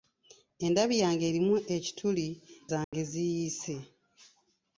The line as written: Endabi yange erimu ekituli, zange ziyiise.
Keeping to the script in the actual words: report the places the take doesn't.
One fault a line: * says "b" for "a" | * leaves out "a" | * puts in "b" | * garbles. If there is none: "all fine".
all fine